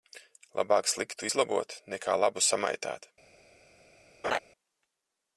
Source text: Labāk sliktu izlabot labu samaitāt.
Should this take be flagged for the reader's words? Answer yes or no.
yes